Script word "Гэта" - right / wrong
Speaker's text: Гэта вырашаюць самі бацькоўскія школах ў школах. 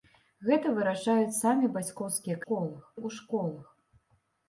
right